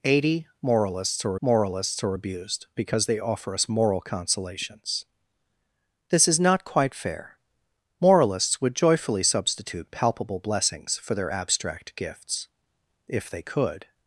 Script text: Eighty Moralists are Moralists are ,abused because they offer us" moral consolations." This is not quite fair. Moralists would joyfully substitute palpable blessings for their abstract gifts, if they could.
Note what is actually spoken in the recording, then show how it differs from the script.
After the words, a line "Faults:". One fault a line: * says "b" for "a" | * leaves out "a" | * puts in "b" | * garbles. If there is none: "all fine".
Eighty Moralists are Moralists are ,abused because they offer us" moral consolations." This is not quite fair. Moralists would joyfully substitute palpable blessings for their abstract gifts, if they could.
Faults:
all fine